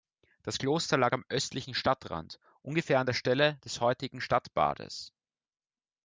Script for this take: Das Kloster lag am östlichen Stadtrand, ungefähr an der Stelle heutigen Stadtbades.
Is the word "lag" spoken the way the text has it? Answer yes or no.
yes